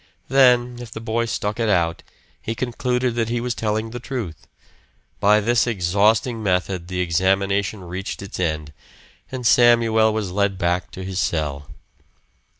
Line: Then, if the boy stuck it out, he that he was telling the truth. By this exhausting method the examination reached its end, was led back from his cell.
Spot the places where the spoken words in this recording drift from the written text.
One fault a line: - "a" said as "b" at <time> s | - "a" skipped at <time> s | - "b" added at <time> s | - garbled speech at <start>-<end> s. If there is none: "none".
- "concluded" added at 2.5 s
- "and Samuel" added at 9.3 s
- "from" said as "to" at 10.9 s